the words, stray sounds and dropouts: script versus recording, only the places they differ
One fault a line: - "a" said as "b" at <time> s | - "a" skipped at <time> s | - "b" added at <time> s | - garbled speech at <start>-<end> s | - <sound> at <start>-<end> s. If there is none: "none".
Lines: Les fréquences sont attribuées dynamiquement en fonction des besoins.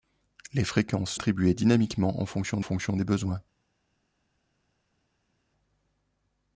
- "sont" skipped at 1.1 s
- "fonction" added at 2.6 s